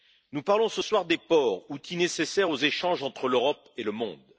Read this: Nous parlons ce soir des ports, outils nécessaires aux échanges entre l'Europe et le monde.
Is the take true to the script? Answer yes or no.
yes